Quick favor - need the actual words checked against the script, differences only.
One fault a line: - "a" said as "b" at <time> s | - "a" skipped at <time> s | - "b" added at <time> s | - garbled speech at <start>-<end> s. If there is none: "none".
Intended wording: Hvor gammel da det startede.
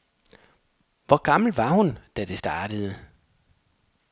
- "var hun" added at 1.6 s